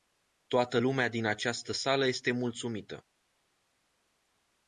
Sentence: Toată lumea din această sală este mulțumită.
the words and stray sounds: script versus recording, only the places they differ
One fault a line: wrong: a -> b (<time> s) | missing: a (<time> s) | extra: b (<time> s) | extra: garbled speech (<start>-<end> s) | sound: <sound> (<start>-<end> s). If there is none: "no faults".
no faults